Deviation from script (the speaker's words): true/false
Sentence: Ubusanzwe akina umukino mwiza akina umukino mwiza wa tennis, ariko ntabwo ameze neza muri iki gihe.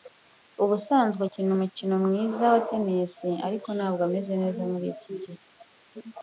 true